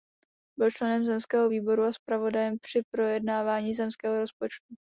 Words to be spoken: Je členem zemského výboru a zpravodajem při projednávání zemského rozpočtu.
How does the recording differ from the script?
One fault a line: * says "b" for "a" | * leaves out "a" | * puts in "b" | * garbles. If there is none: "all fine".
* says "Byl" for "Je"